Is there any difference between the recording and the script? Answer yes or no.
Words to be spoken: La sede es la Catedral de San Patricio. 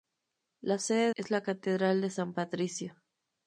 no